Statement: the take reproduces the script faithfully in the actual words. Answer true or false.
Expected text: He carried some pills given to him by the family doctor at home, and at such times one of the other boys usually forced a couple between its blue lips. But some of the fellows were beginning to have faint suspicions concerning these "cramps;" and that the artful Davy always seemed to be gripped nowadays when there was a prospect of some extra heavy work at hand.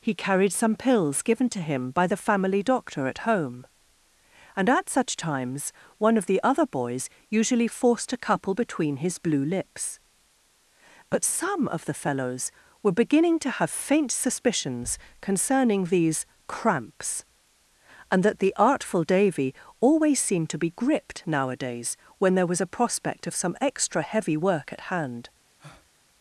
false